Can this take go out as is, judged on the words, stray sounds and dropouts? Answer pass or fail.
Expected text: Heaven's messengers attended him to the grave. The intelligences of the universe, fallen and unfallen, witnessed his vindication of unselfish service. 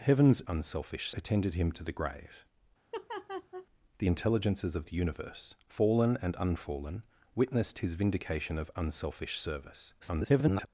fail